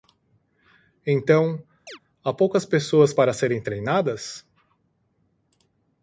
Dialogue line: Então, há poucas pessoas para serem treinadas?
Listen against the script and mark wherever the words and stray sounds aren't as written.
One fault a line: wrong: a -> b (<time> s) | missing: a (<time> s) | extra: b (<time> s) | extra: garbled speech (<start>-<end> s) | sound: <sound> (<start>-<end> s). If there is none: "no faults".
sound: chirp (1.9-2.0 s)